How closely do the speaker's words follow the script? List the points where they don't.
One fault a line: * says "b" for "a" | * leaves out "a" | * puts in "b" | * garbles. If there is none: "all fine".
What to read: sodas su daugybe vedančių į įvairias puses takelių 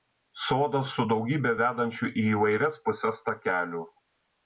all fine